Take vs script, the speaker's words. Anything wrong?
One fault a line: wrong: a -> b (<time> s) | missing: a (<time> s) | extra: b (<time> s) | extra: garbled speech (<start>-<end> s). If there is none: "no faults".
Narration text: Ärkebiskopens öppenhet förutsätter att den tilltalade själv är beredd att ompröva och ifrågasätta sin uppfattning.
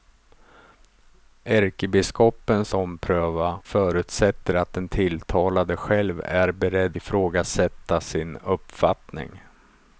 wrong: öppenhet -> ompröva (2.7 s)
missing: att ompröva och (7.0 s)